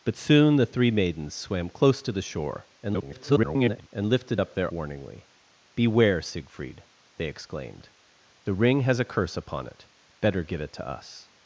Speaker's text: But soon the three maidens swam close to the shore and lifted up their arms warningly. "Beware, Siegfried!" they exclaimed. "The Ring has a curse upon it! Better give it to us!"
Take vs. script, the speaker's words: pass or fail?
fail